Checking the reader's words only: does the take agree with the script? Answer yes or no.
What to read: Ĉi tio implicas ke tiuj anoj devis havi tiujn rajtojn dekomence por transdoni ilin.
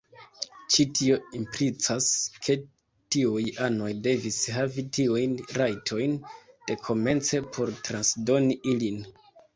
yes